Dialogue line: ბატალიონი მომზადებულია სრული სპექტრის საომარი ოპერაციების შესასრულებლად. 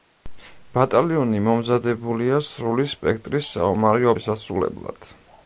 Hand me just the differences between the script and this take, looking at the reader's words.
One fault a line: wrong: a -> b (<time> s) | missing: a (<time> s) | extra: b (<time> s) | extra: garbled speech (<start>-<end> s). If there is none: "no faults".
missing: ოპერაციების (4.1 s)